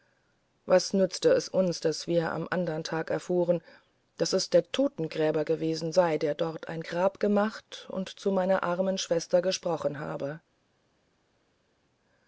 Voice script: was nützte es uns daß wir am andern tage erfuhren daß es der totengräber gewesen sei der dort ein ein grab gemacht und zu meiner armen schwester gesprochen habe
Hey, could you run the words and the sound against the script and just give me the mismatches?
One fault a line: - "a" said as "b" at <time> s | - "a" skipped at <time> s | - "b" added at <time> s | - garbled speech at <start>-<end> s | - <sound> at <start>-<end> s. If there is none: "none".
- "ein" skipped at 6.8 s